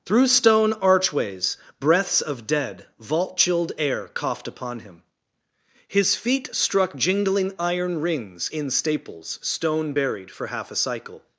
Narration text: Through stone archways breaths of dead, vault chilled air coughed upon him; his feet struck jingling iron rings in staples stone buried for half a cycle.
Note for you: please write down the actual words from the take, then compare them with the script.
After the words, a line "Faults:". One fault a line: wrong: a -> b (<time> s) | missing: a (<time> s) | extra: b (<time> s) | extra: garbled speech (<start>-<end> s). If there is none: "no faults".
Through stone archways breaths of dead, vault chilled air coughed upon him; his feet struck jingling iron rings in staples stone buried for half a cycle.
Faults:
no faults